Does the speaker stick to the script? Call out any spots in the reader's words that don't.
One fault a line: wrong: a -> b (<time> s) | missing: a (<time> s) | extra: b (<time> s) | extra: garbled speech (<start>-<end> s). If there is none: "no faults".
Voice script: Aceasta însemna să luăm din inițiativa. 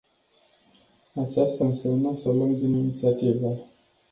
no faults